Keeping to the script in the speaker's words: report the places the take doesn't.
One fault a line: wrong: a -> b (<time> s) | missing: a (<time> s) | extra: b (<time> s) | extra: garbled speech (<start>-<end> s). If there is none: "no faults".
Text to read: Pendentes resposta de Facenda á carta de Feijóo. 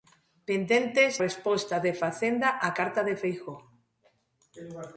no faults